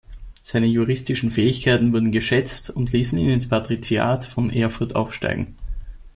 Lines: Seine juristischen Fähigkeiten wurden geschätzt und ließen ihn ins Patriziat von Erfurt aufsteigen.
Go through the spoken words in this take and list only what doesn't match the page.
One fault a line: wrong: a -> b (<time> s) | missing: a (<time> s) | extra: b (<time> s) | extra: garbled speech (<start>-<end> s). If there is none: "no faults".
no faults